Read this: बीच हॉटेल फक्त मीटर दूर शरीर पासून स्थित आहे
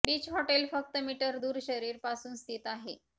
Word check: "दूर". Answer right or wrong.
right